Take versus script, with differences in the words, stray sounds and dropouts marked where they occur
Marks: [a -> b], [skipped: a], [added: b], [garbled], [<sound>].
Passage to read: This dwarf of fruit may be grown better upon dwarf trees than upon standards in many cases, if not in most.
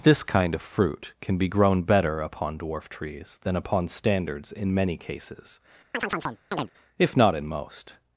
This [dwarf -> kind] of fruit [may -> can] be grown better upon dwarf trees than upon standards in many cases, [chirp] if not in most.